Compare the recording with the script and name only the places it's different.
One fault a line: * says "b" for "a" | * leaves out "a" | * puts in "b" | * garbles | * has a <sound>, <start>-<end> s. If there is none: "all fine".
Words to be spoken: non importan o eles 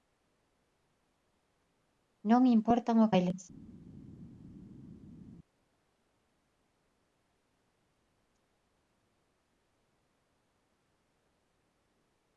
all fine